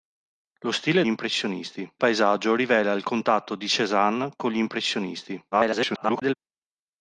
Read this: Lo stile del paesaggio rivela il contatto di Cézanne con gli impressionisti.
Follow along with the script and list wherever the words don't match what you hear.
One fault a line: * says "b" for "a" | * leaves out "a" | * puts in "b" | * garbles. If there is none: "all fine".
* says "impressionisti" for "del"
* garbles